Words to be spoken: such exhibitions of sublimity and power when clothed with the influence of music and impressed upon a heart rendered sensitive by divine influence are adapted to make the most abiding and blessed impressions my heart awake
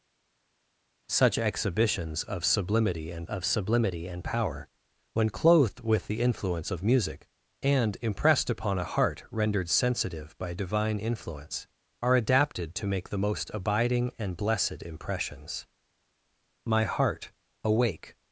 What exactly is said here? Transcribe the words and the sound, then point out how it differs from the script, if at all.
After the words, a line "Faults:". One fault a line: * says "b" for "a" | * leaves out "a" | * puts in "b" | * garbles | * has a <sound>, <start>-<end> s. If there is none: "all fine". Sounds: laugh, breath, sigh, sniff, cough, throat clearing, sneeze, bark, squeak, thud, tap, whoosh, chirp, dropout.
such exhibitions of sublimity and of sublimity and power when clothed with the influence of music and impressed upon a heart rendered sensitive by divine influence are adapted to make the most abiding and blessed impressions my heart awake
Faults:
* puts in "of sublimity and"